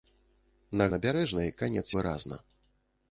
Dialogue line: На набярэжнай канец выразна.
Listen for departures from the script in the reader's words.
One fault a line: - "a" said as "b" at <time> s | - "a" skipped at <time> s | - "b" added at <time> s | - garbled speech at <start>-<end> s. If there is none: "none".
none